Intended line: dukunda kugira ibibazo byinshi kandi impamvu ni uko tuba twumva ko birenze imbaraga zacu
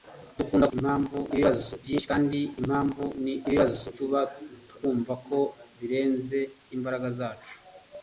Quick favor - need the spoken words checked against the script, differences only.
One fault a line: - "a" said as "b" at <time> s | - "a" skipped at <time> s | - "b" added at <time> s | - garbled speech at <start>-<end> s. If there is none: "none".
- "kugira" said as "impamvu" at 0.7 s
- "uko" said as "ibibazo" at 3.5 s